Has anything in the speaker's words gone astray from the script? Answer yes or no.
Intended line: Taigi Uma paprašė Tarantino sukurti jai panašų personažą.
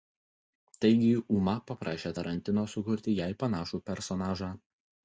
no